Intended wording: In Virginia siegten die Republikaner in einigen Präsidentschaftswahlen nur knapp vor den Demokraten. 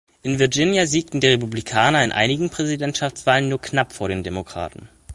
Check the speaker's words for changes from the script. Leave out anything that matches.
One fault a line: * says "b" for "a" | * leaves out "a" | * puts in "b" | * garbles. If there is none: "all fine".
all fine